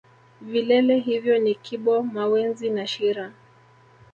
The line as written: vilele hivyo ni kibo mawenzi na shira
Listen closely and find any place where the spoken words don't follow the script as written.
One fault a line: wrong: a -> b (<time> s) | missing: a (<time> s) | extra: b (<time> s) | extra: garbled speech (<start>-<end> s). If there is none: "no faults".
no faults